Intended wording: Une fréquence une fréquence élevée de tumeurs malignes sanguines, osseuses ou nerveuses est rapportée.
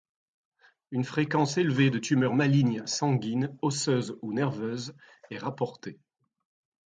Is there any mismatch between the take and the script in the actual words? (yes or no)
yes